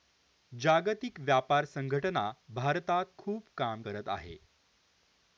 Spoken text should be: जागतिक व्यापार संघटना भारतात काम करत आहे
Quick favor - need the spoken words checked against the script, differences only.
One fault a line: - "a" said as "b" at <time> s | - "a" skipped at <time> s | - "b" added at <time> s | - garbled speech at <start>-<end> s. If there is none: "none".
- "खूप" added at 3.2 s